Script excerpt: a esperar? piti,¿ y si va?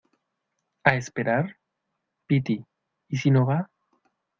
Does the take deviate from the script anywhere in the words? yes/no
yes